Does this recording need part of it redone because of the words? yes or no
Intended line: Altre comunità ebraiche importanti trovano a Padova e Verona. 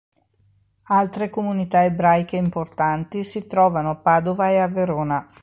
yes